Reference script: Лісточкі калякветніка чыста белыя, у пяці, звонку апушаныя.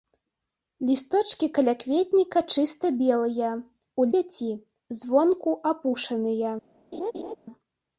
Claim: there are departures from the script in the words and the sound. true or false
true